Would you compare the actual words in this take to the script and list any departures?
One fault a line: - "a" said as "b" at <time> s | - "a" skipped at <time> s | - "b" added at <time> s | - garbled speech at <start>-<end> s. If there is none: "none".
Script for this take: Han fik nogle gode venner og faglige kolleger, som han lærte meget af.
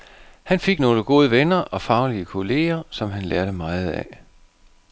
none